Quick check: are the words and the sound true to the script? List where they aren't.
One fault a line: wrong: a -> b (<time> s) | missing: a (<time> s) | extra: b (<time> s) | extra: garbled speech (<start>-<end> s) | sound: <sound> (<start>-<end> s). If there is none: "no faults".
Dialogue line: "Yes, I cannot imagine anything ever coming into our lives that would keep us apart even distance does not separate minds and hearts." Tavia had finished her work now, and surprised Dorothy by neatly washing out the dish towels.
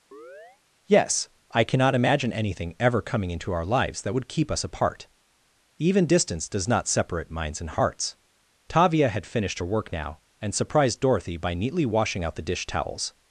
sound: chirp (0.1-0.6 s)